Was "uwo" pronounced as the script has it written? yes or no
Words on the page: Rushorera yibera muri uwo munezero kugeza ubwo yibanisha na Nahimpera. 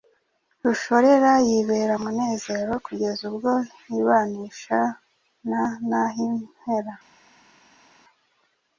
no